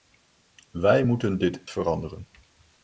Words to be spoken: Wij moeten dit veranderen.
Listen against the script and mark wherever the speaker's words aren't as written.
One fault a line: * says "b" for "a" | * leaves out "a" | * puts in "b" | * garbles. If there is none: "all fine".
all fine